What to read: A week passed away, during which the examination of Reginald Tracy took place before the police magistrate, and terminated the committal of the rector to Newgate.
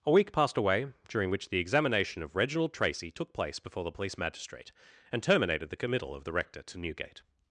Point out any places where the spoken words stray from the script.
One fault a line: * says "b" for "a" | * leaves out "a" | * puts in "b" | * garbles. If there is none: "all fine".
all fine